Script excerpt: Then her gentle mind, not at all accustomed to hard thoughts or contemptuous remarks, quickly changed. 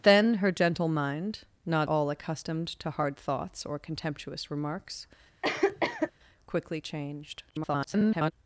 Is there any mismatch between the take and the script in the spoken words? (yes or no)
yes